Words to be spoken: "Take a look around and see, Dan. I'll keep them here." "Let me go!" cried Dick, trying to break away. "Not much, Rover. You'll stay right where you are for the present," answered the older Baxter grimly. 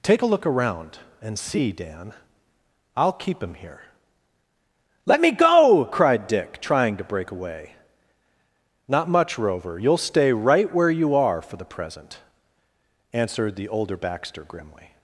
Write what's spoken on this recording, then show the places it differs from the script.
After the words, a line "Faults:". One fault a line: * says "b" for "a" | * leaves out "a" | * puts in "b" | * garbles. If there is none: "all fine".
"Take a look around and see, Dan. I'll keep him here." "Let me go!" cried Dick, trying to break away. "Not much, Rover. You'll stay right where you are for the present," answered the older Baxter grimly.
Faults:
* says "him" for "them"